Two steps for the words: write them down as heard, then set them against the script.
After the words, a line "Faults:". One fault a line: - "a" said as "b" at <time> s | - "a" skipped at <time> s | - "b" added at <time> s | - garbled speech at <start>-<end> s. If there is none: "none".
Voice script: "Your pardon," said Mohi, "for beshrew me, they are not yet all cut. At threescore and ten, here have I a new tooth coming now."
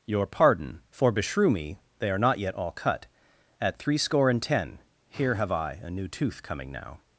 "Your pardon," "for beshrew me, they are not yet all cut. At threescore and ten, here have I a new tooth coming now."
Faults:
- "said Mohi" skipped at 0.8 s